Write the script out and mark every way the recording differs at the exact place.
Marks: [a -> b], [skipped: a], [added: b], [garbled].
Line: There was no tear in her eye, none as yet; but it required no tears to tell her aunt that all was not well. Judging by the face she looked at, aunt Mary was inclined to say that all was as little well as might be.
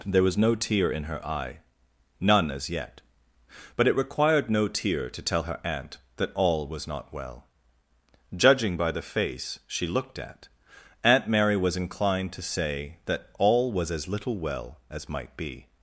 There was no tear in her eye, none as yet; but it required no [tears -> tear] to tell her aunt that all was not well. Judging by the face she looked at, aunt Mary was inclined to say that all was as little well as might be.